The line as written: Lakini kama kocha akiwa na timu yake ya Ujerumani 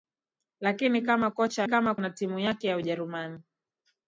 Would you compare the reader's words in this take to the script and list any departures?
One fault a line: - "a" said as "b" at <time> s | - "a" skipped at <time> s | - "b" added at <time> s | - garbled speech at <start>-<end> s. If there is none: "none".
- "akiwa" said as "kama" at 1.6 s